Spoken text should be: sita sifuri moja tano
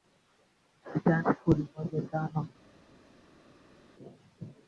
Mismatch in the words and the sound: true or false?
false